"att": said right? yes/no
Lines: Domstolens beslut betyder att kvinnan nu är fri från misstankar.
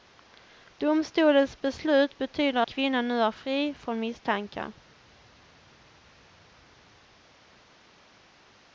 no